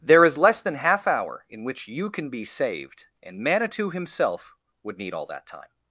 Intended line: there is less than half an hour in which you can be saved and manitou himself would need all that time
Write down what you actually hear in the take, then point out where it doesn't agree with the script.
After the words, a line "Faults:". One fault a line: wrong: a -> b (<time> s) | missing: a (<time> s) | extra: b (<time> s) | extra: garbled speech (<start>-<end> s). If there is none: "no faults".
there is less than half hour in which you can be saved and manitou himself would need all that time
Faults:
missing: an (1.1 s)